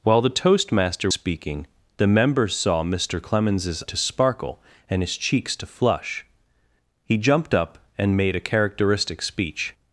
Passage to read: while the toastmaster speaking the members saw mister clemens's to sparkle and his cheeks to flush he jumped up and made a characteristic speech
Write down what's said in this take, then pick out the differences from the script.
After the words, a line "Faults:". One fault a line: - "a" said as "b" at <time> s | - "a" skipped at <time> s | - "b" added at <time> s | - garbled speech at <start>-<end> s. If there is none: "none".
while the toastmaster speaking the members saw mister clemens's to sparkle and his cheeks to flush he jumped up and made a characteristic speech
Faults:
none